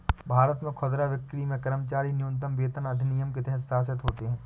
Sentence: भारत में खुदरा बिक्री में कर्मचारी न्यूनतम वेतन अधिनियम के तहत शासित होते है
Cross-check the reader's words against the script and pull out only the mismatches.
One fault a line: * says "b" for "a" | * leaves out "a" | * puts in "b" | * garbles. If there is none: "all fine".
all fine